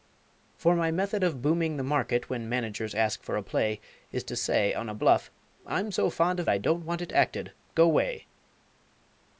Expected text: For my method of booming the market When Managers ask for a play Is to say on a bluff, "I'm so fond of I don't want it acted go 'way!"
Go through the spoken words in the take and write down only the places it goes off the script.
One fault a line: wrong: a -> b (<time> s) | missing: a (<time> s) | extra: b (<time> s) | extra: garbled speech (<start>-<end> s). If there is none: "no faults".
no faults